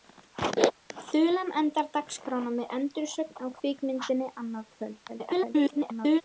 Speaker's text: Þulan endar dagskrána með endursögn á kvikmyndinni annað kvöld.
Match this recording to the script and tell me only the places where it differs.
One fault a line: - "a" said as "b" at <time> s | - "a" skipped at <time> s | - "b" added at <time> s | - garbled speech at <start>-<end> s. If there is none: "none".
- garbled speech at 5.1-6.2 s